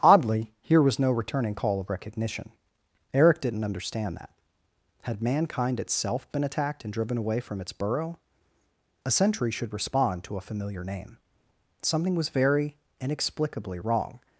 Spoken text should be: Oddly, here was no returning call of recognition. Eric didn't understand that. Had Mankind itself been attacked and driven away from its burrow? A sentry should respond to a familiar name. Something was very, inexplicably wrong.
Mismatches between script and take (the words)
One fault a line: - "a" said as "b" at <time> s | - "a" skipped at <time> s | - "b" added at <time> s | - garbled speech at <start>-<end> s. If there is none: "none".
none